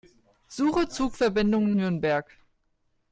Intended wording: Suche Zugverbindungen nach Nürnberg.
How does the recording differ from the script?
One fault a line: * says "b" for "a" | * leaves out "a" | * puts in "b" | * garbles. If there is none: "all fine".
* leaves out "nach"